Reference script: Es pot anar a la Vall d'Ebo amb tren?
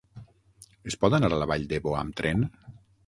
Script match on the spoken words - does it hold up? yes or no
yes